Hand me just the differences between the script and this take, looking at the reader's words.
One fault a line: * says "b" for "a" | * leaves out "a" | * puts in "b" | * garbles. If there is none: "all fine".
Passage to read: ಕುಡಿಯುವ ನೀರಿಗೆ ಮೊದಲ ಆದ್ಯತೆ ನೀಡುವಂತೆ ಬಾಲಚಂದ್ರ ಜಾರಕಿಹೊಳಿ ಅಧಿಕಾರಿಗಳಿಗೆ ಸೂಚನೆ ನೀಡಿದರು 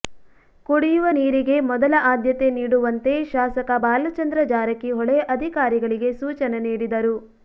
* puts in "ಶಾಸಕ"